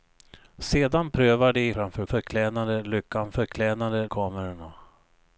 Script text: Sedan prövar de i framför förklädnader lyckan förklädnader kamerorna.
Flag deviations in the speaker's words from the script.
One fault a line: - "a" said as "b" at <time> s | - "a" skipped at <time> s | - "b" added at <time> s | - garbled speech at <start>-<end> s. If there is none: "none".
none